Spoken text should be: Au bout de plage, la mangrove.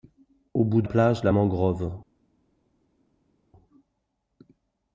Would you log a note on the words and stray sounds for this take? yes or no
no